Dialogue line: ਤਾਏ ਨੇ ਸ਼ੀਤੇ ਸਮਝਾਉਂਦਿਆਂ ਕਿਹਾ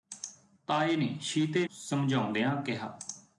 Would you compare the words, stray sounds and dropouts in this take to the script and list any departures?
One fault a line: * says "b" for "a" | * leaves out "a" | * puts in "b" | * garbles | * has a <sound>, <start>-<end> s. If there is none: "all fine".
all fine